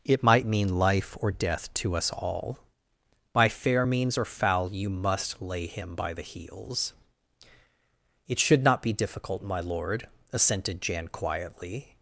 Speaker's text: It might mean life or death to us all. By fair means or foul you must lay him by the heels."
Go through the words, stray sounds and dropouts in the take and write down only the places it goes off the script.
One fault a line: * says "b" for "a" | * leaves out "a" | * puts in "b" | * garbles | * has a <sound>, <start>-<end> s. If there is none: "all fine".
* puts in "It should not be difficult my lord assented Jan quietly"